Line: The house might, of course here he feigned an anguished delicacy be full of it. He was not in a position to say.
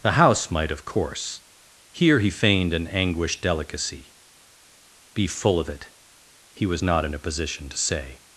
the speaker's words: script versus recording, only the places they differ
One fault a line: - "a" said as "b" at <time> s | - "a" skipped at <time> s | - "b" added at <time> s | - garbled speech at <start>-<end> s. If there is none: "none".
none